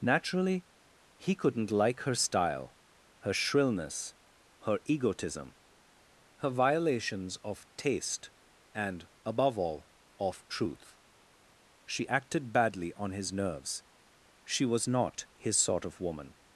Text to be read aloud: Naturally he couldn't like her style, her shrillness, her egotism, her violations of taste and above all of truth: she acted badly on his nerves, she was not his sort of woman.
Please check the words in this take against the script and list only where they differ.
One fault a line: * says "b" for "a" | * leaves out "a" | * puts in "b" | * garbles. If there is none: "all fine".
all fine